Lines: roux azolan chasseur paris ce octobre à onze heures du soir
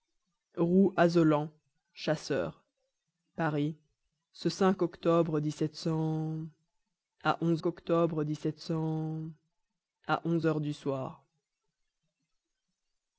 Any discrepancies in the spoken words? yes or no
yes